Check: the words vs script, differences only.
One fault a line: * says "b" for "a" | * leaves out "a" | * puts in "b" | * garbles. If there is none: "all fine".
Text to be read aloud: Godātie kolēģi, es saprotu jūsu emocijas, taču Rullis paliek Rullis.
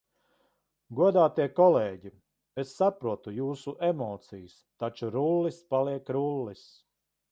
all fine